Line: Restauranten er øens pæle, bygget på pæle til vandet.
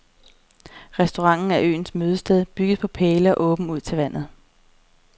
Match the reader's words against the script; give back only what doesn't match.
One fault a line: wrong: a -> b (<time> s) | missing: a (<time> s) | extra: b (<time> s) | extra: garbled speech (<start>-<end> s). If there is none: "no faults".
wrong: pæle -> mødested (1.9 s)
extra: og åben ud (3.4 s)